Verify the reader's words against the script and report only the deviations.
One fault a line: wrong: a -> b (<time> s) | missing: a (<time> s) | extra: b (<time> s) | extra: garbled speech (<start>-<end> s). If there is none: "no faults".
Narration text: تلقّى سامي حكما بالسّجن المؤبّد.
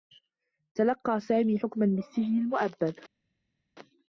no faults